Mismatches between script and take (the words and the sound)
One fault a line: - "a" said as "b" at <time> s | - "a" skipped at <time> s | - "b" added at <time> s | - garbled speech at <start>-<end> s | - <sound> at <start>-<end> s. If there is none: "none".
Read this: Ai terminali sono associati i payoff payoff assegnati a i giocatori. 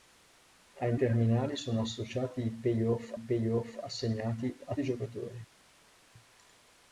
none